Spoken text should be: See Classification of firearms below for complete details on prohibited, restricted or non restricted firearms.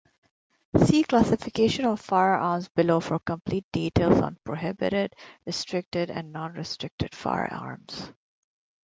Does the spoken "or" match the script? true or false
false